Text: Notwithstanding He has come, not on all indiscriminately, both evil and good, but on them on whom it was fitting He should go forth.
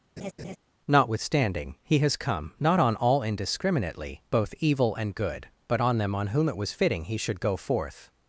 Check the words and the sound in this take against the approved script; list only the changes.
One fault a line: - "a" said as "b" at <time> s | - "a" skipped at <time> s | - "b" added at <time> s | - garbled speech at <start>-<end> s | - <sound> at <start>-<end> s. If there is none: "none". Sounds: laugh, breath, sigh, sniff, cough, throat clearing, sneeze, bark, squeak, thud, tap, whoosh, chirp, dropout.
- laugh at 0.2-0.6 s